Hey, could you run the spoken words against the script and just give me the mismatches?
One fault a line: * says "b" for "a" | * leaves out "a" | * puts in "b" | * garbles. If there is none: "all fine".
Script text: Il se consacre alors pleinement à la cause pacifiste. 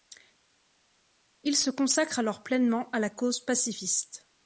all fine